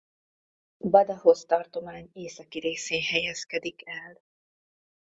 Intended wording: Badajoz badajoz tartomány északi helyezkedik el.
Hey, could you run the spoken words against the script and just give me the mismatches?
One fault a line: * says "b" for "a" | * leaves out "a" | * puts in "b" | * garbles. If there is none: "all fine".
* leaves out "badajoz"
* puts in "részén"